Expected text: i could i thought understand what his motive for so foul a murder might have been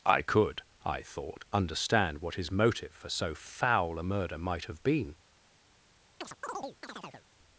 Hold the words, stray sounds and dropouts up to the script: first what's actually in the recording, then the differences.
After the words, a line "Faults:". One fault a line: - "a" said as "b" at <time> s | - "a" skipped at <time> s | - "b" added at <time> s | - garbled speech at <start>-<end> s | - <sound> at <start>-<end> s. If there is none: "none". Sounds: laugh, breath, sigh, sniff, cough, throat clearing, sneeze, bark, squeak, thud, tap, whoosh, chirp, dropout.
i could i thought understand what his motive for so foul a murder might have been
Faults:
- chirp at 6.2-7.3 s